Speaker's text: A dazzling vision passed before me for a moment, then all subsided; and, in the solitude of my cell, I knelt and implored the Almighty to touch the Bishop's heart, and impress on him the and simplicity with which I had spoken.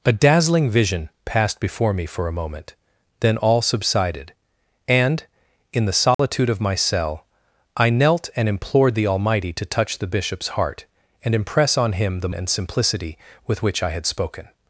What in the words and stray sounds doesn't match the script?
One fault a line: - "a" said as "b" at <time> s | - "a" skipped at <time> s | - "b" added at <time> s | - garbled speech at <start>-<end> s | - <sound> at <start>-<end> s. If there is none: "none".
- dropout at 6.1-6.2 s